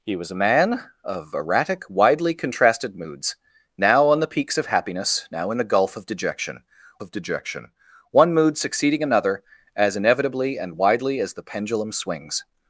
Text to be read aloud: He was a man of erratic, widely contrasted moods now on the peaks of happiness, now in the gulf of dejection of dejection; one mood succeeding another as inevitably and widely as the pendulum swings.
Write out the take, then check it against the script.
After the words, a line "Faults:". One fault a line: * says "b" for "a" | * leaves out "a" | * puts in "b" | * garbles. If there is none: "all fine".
He was a man of erratic, widely contrasted moods now on the peaks of happiness, now in the gulf of dejection of dejection; one mood succeeding another as inevitably and widely as the pendulum swings.
Faults:
all fine